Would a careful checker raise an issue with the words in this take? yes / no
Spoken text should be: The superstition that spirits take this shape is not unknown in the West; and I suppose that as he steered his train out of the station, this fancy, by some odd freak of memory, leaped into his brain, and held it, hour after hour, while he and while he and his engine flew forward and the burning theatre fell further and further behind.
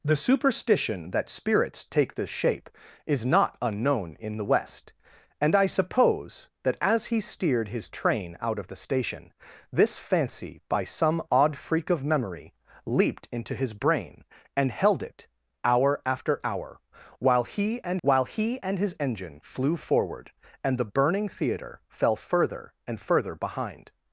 no